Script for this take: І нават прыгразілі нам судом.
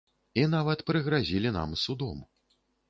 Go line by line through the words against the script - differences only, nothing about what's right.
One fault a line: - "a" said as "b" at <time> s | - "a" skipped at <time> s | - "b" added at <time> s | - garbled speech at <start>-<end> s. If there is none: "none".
none